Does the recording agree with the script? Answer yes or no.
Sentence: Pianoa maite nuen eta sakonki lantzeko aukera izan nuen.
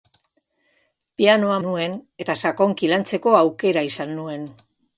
no